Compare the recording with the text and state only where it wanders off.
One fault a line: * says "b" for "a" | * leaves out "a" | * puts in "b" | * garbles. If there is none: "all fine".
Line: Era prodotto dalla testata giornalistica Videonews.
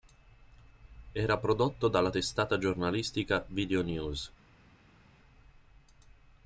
all fine